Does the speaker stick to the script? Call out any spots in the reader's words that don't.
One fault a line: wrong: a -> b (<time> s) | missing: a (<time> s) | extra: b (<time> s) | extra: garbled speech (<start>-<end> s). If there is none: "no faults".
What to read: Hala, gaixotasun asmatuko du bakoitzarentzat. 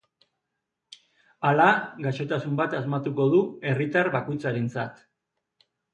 extra: bat (2.6 s)
extra: herritar (3.7 s)